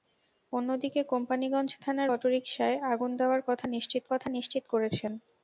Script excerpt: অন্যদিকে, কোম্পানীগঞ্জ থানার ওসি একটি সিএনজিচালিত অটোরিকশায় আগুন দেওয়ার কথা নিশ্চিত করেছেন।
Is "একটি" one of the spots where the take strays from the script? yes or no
yes